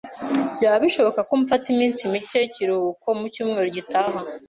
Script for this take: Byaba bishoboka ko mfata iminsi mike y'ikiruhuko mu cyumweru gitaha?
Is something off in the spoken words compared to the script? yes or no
no